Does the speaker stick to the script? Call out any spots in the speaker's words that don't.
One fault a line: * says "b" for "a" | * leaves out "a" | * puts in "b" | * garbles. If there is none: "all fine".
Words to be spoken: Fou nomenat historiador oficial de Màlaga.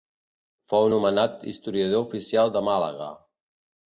all fine